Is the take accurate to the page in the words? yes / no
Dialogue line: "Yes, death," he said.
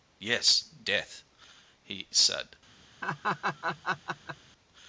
yes